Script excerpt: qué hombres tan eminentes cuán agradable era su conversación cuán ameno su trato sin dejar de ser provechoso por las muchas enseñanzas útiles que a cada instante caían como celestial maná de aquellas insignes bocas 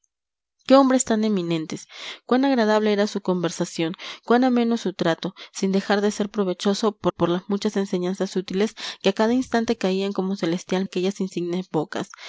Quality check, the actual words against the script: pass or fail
fail